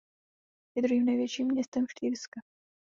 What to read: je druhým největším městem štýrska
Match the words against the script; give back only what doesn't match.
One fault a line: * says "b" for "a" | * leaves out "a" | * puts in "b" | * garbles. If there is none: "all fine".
all fine